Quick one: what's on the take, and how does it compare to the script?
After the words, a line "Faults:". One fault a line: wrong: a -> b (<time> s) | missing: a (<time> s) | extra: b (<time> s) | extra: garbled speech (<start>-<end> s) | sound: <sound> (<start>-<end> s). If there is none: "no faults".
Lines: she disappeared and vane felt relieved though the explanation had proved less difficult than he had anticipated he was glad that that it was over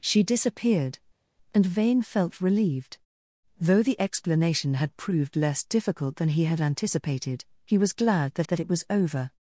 she disappeared and vane felt relieved though the explanation had proved less difficult than he had anticipated he was glad that that it was over
Faults:
no faults